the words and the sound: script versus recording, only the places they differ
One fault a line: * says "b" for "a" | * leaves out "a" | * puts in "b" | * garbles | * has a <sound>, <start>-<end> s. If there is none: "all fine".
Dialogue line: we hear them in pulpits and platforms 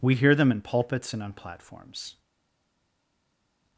* puts in "on"